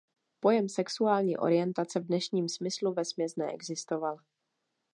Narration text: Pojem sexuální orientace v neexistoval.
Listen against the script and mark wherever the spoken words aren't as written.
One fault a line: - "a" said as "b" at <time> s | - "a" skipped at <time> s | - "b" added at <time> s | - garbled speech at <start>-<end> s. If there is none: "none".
- "dnešním smyslu vesměs" added at 2.1 s